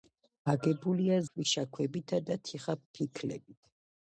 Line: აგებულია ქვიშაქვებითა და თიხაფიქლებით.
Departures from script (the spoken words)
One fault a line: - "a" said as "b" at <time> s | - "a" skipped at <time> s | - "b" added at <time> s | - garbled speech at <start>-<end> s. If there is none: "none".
none